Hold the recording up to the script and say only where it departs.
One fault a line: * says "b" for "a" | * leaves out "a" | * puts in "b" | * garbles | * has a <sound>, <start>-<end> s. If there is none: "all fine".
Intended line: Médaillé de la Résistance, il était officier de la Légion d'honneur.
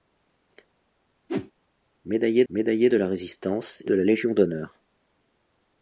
* has a whoosh, 1.3-1.5 s
* puts in "médaillé"
* leaves out "il était officier"